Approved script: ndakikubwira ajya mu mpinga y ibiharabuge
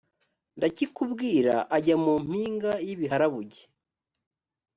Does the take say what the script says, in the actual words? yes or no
yes